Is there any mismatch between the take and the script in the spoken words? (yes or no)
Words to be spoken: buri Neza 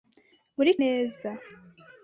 no